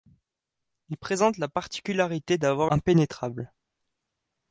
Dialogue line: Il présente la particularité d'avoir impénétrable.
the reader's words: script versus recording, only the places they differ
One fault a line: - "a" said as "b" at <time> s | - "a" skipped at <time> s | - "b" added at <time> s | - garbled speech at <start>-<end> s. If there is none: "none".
none